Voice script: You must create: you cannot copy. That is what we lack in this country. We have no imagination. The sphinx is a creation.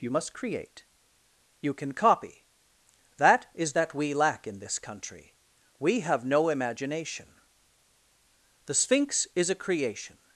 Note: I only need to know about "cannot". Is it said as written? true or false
false